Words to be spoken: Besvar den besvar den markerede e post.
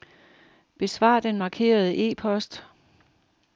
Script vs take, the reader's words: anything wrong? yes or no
yes